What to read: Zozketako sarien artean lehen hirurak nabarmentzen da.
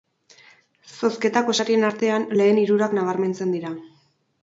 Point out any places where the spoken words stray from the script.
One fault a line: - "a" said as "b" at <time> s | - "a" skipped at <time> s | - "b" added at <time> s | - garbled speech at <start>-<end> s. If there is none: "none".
- "da" said as "dira" at 3.6 s